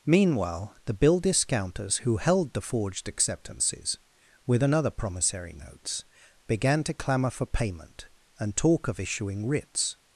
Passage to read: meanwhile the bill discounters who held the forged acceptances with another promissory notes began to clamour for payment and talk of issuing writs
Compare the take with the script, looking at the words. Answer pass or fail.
pass